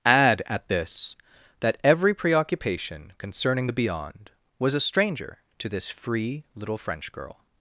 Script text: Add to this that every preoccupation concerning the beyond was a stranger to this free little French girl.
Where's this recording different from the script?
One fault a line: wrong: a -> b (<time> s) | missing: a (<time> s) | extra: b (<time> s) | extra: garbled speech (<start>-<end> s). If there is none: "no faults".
wrong: to -> at (0.5 s)